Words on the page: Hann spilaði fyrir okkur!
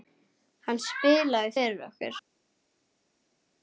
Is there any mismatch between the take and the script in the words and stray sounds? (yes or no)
no